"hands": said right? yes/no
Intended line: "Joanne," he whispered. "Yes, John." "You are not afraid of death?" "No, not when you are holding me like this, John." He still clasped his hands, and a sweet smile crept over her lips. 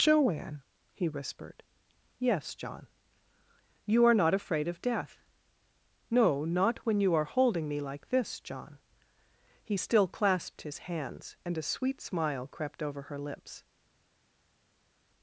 yes